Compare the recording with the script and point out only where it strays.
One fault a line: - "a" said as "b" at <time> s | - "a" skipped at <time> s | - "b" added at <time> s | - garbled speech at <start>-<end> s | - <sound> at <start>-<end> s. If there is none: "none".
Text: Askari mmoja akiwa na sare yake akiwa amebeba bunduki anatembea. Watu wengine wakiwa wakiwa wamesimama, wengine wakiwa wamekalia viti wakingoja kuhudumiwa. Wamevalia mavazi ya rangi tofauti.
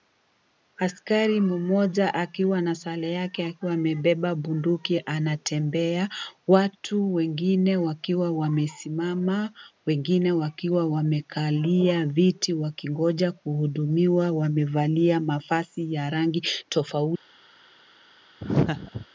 - "wakiwa" skipped at 8.3 s
- laugh at 18.4-19.1 s